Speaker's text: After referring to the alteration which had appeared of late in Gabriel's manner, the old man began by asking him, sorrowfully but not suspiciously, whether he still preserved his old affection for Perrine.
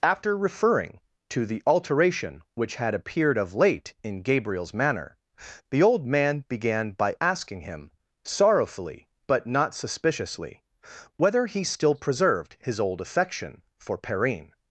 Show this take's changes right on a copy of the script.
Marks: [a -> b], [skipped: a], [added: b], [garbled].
After referring to the alteration which had appeared of late in Gabriel's manner, the old man began by asking him, sorrowfully but not suspiciously, whether he still preserved his old affection for Perrine.